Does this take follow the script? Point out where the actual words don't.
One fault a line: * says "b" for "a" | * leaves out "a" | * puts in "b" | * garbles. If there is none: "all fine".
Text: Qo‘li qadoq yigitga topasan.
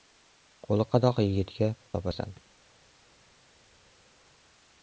all fine